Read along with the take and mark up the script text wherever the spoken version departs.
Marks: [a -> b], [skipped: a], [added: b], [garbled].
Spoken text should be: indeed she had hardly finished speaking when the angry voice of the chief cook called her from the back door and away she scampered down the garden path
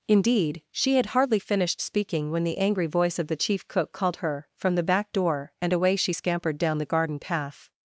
indeed she had hardly finished speaking when the angry voice of the chief cook called her from the back door and away she scampered down the garden path